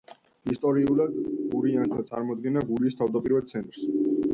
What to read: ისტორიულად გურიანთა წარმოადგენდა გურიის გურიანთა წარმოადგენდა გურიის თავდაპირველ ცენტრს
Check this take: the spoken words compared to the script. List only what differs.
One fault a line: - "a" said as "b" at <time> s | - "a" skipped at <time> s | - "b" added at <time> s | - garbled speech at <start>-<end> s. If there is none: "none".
- "გურიანთა წარმოადგენდა გურიის" skipped at 3.0 s